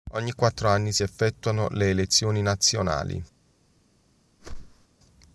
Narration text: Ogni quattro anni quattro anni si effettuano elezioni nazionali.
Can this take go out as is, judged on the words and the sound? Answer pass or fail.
fail